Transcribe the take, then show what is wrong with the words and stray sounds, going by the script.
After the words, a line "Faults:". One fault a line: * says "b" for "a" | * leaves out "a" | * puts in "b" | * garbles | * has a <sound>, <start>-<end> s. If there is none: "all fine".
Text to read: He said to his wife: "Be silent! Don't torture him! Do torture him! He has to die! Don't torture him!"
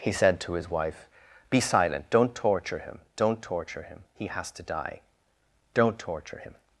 He said to his wife: "Be silent! Don't torture him! Don't torture him! He has to die! Don't torture him!"
Faults:
* says "Don't" for "Do"